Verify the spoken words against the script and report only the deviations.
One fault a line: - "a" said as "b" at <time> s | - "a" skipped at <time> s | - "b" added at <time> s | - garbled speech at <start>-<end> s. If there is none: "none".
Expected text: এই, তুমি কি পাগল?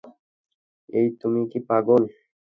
none